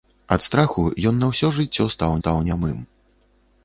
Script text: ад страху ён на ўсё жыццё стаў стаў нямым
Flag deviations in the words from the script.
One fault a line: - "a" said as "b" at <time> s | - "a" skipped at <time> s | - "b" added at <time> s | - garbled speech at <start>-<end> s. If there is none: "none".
none